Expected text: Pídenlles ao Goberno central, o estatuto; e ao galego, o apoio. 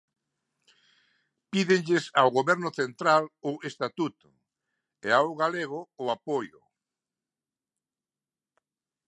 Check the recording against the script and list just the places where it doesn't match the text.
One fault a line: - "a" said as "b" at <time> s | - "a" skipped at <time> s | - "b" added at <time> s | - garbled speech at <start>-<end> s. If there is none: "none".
none